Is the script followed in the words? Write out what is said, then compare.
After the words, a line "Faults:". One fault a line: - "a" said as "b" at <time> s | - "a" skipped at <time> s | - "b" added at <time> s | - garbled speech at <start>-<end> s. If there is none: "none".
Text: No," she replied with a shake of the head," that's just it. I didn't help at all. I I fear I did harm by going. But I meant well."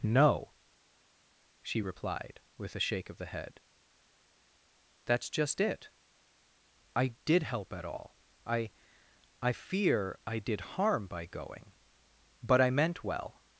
No," she replied with a shake of the head," that's just it. I did help at all. I I fear I did harm by going. But I meant well."
Faults:
- "didn't" said as "did" at 7.2 s